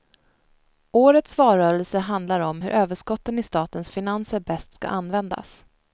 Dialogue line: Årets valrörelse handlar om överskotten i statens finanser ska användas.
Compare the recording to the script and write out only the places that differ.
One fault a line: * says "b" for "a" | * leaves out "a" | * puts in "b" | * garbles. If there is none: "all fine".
* puts in "hur"
* puts in "bäst"